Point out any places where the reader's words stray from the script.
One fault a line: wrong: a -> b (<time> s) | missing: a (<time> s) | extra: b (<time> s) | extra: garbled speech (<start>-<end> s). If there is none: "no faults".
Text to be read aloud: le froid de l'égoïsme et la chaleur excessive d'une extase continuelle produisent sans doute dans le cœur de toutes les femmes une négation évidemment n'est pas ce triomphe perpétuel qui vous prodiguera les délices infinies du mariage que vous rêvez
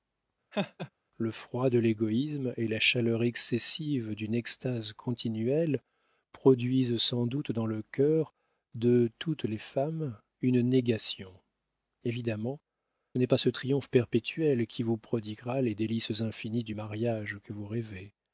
no faults